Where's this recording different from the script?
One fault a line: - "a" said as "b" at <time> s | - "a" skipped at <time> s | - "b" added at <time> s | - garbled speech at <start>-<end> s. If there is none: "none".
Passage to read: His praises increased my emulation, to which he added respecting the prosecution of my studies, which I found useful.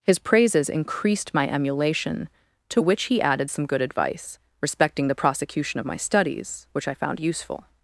- "some good advice" added at 3.5 s